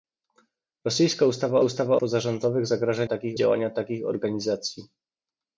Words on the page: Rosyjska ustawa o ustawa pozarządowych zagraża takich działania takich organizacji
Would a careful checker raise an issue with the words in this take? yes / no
no